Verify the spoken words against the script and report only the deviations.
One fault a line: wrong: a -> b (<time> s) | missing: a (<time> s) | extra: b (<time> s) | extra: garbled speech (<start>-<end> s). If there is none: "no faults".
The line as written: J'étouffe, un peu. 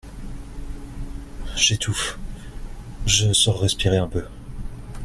extra: je sors respirer (3.0 s)